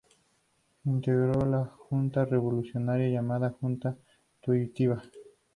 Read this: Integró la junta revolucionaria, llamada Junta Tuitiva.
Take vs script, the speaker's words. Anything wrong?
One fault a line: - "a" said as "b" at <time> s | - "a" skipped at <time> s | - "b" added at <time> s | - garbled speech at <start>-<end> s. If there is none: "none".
none